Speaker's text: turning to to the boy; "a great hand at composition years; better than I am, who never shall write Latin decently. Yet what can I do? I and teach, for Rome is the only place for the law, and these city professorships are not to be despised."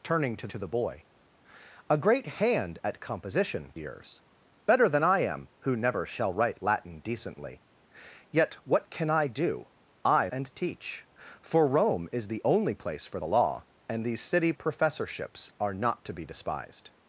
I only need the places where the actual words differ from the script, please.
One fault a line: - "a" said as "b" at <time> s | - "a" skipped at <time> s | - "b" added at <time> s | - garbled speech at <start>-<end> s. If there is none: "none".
none